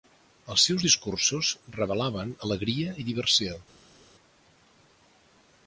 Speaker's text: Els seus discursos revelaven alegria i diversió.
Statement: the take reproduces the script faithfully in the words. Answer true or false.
true